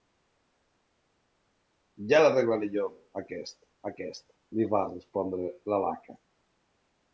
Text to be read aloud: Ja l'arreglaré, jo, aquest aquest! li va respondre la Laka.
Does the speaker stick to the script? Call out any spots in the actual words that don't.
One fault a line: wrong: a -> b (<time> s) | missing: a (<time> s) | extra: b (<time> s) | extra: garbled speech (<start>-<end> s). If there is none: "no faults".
no faults